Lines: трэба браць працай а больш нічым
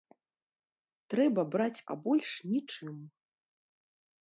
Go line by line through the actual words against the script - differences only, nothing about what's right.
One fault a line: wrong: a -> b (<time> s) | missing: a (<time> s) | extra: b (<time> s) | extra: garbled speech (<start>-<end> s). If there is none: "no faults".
missing: працай (1.9 s)